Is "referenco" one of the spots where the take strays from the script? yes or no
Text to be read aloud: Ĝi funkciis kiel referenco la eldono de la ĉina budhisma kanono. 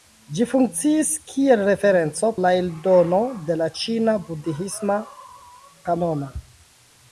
no